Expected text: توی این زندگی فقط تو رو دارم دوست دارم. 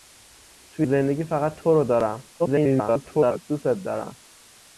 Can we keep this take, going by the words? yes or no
no